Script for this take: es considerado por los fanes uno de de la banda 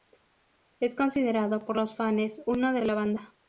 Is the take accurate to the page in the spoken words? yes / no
yes